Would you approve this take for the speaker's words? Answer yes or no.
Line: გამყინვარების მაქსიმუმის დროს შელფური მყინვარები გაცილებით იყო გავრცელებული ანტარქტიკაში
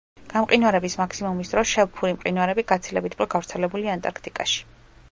yes